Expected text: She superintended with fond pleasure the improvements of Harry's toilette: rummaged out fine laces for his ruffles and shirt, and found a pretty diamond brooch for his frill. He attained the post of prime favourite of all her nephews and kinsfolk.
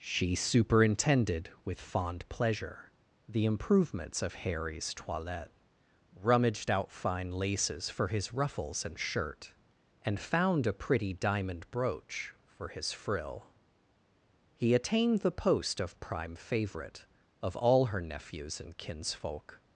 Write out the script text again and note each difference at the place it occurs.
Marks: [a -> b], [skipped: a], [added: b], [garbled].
She superintended with fond pleasure the improvements of Harry's toilette: rummaged out fine laces for his ruffles and shirt, and found a pretty diamond brooch for his frill. He attained the post of prime favourite of all her nephews and kinsfolk.